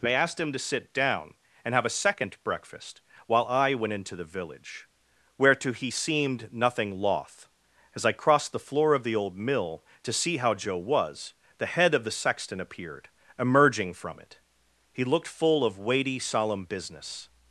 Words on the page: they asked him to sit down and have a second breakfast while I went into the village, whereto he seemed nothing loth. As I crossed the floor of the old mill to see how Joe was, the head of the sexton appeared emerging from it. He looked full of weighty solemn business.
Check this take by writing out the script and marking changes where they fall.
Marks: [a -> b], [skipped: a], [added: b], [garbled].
they asked him to sit down and have a second breakfast while I went into the village, whereto he seemed nothing loth. As I crossed the floor of the old mill to see how Joe was, the head of the sexton appeared emerging from it. He looked full of weighty solemn business.